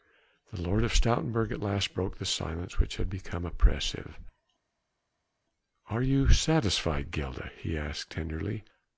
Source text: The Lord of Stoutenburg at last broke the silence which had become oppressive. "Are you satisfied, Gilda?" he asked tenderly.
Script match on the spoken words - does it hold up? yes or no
yes